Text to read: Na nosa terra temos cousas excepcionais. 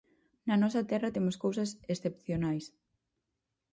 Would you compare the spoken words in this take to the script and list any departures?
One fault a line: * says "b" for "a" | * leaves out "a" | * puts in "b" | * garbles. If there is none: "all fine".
all fine